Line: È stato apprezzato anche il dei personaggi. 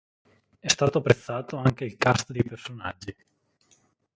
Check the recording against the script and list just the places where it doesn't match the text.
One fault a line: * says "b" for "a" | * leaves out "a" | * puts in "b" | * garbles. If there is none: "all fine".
* puts in "cast"